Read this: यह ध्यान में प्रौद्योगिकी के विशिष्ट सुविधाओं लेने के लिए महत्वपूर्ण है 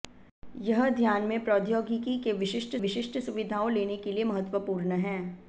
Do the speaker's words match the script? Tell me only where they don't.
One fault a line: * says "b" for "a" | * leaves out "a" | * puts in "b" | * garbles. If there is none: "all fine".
* puts in "विशिष्ट"